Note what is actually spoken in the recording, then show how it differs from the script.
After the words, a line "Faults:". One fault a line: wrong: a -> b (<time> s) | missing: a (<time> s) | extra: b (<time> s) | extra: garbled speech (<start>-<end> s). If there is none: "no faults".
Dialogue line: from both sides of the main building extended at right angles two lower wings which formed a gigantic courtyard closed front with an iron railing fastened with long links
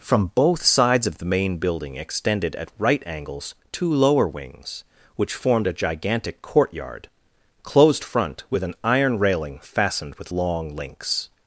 from both sides of the main building extended at right angles two lower wings which formed a gigantic courtyard closed front with an iron railing fastened with long links
Faults:
no faults